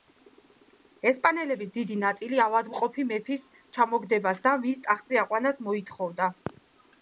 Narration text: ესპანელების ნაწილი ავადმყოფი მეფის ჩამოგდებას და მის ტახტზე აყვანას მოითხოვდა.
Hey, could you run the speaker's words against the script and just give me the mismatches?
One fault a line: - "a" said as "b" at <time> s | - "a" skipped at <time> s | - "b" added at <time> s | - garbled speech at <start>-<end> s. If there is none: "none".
- "დიდი" added at 1.8 s